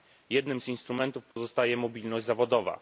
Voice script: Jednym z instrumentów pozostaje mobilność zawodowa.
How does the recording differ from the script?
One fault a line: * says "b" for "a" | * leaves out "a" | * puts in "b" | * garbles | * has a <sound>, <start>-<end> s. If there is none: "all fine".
* has a dropout, 1.3-1.4 s